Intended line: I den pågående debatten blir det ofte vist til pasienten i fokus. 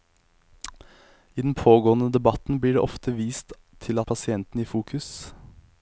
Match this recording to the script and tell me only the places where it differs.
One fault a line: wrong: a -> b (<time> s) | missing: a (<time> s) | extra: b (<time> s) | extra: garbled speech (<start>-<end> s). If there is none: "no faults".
no faults